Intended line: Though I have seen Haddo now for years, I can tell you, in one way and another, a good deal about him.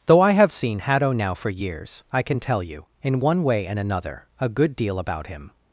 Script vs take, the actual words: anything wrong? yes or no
no